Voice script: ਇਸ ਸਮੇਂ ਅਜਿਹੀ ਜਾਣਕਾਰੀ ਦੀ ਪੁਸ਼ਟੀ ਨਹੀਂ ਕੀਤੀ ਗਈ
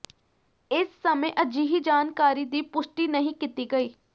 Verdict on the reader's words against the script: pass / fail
pass